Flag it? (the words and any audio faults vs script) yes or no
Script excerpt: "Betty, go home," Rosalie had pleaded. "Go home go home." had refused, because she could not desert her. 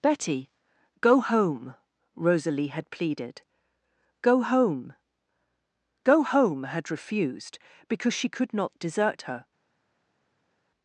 no